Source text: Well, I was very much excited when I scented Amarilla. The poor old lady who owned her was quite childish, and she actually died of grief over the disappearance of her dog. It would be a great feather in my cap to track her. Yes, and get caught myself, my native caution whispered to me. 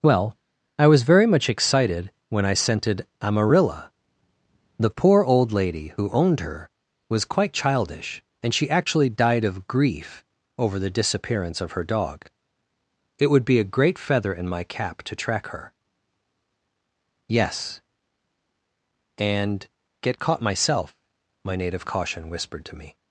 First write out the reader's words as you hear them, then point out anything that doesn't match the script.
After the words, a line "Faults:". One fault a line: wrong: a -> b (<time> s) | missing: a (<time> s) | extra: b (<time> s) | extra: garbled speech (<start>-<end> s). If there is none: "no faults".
Well, I was very much excited when I scented Amarilla. The poor old lady who owned her was quite childish, and she actually died of grief over the disappearance of her dog. It would be a great feather in my cap to track her. Yes, and get caught myself, my native caution whispered to me.
Faults:
no faults